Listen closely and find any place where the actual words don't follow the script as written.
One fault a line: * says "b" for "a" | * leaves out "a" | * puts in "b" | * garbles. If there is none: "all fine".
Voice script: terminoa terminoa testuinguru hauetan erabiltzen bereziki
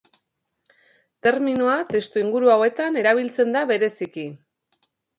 * leaves out "terminoa"
* puts in "da"